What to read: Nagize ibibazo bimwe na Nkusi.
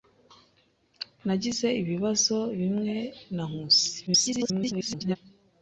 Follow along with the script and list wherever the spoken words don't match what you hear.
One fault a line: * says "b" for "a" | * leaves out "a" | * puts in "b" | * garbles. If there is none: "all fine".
* garbles